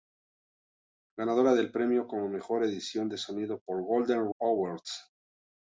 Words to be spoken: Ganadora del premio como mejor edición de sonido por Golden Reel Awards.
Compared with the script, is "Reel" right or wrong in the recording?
wrong